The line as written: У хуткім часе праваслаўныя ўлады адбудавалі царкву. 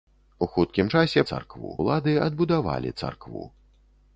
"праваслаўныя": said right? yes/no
no